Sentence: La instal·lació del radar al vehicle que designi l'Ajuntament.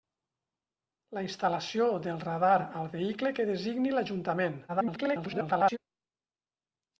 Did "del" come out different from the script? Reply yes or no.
no